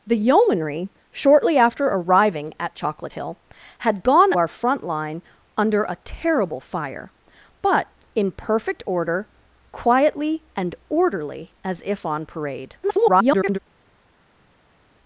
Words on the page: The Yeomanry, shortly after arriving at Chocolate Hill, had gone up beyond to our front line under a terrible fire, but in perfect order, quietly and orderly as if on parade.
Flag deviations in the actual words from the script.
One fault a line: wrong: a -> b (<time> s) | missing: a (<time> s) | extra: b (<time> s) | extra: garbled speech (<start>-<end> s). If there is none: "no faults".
missing: up beyond to (4.3 s)
extra: garbled speech (12.8-13.6 s)